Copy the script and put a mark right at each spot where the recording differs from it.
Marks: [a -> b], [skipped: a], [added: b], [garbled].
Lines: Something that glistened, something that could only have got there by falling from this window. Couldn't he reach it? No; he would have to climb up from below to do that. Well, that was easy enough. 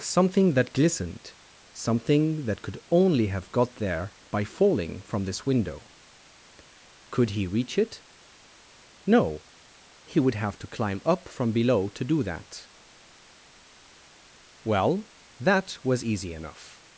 Something that glistened, something that could only have got there by falling from this window. [Couldn't -> Could] he reach it? No; he would have to climb up from below to do that. Well, that was easy enough.